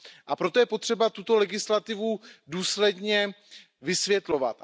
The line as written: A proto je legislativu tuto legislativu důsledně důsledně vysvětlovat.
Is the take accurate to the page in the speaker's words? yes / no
no